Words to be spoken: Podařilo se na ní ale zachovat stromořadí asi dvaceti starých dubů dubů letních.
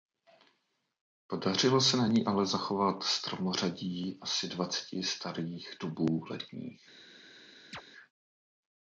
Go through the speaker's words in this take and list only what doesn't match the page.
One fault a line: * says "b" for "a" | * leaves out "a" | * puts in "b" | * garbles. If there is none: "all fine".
* leaves out "dubů"